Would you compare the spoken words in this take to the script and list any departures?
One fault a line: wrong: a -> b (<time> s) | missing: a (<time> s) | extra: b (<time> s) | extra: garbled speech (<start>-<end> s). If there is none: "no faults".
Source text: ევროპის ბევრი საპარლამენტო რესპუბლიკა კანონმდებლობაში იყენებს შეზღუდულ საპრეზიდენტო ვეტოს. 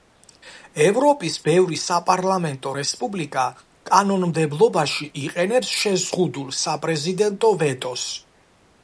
no faults